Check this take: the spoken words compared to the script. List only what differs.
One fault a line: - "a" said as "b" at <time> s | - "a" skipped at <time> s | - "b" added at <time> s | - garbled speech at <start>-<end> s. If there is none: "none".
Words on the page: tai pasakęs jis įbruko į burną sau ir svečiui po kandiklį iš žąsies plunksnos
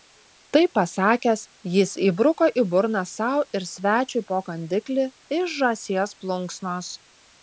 none